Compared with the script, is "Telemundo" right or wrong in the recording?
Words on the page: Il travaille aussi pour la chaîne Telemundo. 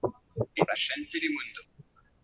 right